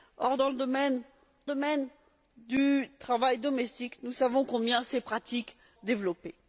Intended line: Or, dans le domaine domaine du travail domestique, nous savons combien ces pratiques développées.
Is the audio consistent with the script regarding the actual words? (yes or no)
yes